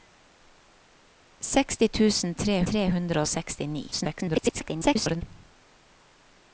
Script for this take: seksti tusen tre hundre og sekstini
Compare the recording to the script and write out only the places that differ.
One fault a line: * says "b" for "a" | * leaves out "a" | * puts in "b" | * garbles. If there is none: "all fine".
* puts in "tre"
* garbles